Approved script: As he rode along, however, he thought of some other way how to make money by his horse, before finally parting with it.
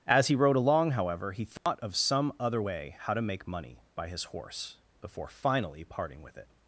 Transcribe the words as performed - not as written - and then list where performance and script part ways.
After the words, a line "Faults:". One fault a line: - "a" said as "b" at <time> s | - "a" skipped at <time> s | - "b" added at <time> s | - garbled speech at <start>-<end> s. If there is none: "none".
As he rode along, however, he thought of some other way how to make money by his horse, before finally parting with it.
Faults:
none